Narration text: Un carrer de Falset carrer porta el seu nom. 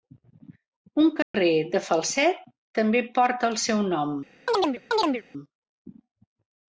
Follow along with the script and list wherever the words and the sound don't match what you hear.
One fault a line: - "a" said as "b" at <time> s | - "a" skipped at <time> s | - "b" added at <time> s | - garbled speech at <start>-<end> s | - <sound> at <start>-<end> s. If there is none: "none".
- dropout at 1.2-1.3 s
- "carrer" said as "també" at 2.8 s
- chirp at 4.5-5.2 s